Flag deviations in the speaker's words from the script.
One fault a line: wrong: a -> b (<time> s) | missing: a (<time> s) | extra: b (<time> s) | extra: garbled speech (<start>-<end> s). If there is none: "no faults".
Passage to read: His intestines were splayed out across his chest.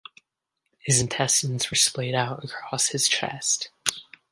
no faults